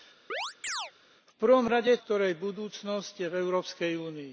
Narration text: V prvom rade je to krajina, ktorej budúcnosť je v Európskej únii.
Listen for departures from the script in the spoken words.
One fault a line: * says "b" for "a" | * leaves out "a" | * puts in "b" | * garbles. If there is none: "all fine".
* leaves out "to krajina"